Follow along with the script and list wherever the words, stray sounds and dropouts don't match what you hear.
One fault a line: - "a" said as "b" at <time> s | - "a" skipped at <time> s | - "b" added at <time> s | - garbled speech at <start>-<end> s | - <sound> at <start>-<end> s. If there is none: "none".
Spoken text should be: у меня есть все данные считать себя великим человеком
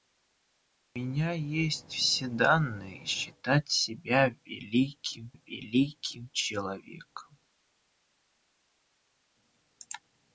- "великим" added at 5.3 s